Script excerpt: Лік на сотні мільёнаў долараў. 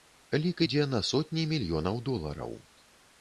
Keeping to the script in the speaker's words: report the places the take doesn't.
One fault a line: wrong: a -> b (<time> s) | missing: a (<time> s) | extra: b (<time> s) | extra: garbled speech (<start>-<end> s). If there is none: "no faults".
extra: ідзе (0.6 s)